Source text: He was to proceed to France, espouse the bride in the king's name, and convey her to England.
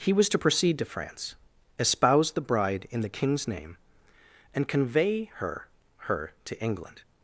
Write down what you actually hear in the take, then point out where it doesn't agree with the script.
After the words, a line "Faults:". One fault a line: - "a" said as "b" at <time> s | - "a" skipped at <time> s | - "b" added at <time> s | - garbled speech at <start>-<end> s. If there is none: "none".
He was to proceed to France, espouse the bride in the king's name, and convey her her to England.
Faults:
- "her" added at 6.1 s